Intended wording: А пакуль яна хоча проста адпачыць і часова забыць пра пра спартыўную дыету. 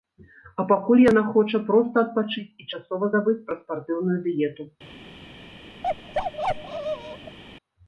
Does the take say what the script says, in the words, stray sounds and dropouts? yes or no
no